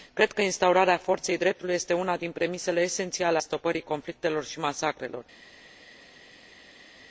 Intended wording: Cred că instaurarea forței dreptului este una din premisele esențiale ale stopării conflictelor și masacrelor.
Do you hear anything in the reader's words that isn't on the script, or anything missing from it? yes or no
yes